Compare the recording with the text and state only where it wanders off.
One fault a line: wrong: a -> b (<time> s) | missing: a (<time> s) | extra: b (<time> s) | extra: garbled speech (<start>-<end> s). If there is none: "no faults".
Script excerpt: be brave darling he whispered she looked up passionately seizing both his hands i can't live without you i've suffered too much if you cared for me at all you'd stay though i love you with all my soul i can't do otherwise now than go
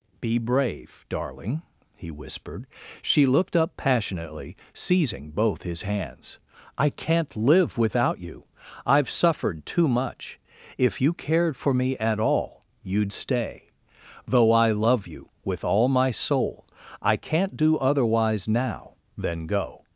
no faults